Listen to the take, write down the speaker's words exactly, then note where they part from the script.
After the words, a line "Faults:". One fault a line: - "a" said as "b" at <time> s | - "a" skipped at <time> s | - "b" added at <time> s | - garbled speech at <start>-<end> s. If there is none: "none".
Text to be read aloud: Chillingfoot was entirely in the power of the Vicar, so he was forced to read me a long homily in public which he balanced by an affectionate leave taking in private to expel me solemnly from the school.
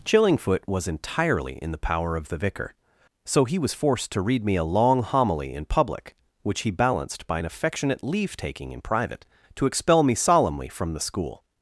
Chillingfoot was entirely in the power of the Vicar, so he was forced to read me a long homily in public which he balanced by an affectionate leave taking in private to expel me solemnly from the school.
Faults:
none